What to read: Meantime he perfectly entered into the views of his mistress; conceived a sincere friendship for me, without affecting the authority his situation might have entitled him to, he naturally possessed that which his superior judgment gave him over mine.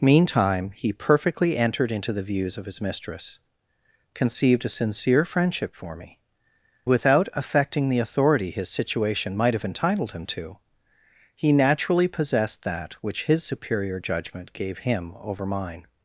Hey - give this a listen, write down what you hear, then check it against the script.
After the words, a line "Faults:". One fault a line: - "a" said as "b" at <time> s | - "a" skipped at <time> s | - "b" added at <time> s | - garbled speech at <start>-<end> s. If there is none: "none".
Meantime he perfectly entered into the views of his mistress; conceived a sincere friendship for me, without affecting the authority his situation might have entitled him to, he naturally possessed that which his superior judgment gave him over mine.
Faults:
none